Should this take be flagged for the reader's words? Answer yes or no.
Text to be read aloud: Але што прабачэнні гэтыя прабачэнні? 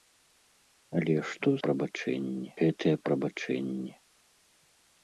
no